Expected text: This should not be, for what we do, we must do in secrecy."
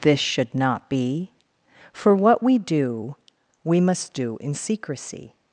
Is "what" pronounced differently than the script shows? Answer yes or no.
no